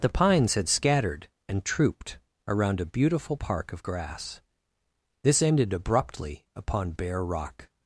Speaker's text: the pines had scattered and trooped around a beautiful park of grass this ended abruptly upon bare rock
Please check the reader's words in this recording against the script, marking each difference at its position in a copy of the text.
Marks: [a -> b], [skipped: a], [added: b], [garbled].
the pines had scattered and trooped around a beautiful park of grass this ended abruptly upon bare rock